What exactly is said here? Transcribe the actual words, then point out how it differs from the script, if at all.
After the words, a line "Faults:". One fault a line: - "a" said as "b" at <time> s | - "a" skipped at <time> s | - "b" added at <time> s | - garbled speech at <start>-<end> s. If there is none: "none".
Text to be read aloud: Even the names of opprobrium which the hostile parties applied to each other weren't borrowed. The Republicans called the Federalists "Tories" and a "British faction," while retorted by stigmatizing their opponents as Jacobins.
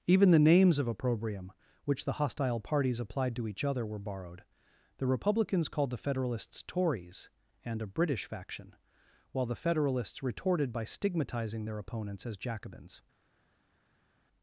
Even the names of opprobrium which the hostile parties applied to each other were borrowed. The Republicans called the Federalists "Tories" and a "British faction," while the Federalists retorted by stigmatizing their opponents as Jacobins.
Faults:
- "weren't" said as "were" at 3.9 s
- "the Federalists" added at 9.4 s